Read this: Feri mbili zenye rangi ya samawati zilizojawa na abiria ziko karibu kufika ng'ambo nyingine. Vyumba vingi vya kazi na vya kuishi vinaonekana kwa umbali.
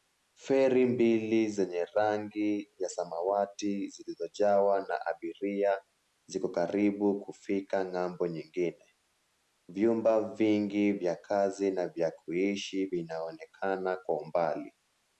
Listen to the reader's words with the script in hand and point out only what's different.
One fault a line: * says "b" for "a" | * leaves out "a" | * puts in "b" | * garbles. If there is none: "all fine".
all fine